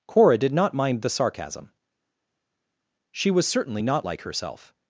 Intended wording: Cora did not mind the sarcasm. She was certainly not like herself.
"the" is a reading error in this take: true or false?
false